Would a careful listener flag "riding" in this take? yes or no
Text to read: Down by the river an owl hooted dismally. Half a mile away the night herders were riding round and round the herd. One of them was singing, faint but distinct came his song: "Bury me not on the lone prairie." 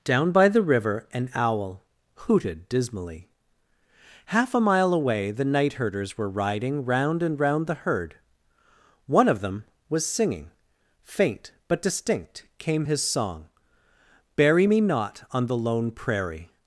no